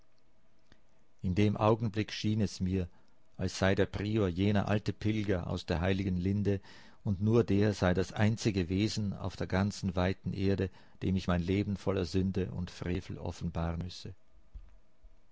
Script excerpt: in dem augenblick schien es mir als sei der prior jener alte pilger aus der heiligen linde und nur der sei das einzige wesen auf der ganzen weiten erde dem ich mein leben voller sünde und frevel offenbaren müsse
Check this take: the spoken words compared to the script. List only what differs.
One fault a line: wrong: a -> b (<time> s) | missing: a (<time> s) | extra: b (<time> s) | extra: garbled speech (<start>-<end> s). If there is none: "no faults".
no faults